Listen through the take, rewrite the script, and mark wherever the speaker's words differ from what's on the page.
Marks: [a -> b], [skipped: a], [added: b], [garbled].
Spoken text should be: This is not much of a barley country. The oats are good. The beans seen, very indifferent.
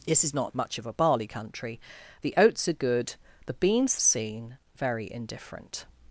This is not much of a barley country. The oats are good. The beans seen, very indifferent.